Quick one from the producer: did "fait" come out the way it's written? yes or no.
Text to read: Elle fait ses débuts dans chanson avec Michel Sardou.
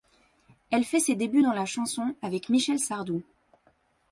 yes